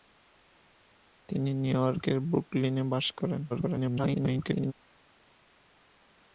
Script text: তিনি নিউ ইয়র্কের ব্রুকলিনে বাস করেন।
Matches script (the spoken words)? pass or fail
fail